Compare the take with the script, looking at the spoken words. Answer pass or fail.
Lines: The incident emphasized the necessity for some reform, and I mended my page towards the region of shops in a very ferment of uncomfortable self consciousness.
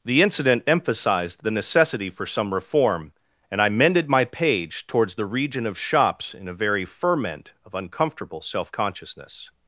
pass